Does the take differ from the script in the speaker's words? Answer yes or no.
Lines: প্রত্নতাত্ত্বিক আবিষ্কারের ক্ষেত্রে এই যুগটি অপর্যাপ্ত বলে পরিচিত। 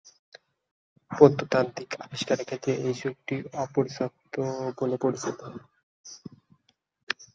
no